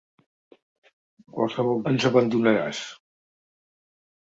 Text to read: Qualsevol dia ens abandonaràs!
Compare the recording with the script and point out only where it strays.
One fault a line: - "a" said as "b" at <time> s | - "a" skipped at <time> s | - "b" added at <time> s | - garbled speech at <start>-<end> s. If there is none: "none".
- "dia" skipped at 1.8 s